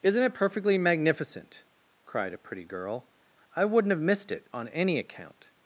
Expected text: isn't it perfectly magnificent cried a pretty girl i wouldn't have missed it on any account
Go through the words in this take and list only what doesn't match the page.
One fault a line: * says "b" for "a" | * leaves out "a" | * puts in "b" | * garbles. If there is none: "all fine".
all fine